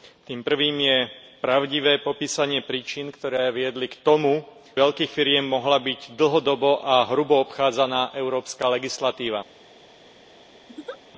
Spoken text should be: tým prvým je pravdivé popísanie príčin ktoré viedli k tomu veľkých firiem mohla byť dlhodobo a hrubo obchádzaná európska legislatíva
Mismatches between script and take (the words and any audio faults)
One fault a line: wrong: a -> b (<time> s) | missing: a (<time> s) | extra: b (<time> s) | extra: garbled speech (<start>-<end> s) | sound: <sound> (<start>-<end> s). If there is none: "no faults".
sound: laugh (10.7-11.0 s)